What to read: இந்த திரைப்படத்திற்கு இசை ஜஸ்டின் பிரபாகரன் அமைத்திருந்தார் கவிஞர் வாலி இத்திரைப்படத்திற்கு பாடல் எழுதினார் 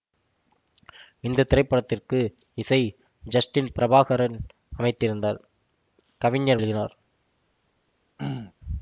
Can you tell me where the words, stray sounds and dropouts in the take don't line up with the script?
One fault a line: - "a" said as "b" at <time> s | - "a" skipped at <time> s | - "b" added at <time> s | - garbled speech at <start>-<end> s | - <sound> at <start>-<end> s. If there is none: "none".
- "வாலி இத்திரைப்படத்திற்கு பாடல்" skipped at 6.6 s
- throat clearing at 8.2-8.5 s